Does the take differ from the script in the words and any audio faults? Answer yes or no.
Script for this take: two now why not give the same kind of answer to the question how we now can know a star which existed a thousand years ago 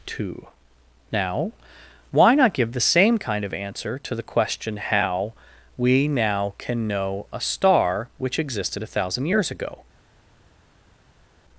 no